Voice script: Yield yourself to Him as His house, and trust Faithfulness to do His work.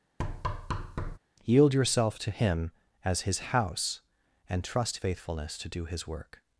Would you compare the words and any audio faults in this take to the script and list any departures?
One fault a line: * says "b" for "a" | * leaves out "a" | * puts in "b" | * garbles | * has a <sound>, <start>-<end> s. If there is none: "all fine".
* has a thud, 0.2-1.2 s